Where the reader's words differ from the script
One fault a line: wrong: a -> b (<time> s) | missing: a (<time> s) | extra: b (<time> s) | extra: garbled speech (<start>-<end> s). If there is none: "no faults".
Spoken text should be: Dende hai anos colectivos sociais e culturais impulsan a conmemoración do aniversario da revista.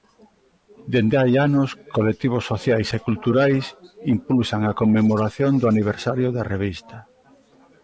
no faults